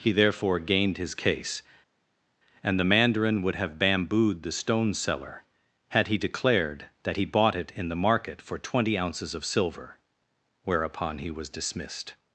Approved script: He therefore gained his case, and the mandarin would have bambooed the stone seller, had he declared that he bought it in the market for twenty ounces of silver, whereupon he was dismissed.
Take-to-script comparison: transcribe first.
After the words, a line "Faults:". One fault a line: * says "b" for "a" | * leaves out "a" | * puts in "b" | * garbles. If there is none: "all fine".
He therefore gained his case, and the mandarin would have bambooed the stone seller, had he declared that he bought it in the market for twenty ounces of silver, whereupon he was dismissed.
Faults:
all fine